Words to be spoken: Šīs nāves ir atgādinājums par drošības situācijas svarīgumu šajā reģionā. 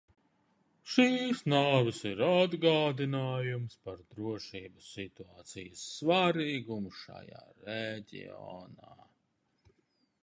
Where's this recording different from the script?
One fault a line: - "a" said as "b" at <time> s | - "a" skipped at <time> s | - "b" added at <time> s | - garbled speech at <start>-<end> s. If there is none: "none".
none